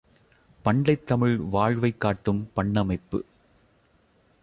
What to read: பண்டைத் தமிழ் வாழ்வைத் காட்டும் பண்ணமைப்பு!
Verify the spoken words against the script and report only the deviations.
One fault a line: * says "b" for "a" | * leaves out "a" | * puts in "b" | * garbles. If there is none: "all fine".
all fine